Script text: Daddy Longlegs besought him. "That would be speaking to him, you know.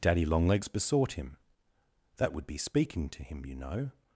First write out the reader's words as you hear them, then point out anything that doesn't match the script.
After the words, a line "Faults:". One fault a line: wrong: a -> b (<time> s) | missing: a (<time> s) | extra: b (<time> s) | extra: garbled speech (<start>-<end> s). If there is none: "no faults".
Daddy Longlegs besought him. "That would be speaking to him, you know.
Faults:
no faults